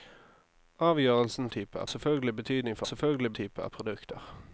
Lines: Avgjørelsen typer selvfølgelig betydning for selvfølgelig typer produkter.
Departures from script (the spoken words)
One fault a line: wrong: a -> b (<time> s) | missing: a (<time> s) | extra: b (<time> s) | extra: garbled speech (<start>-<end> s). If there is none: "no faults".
no faults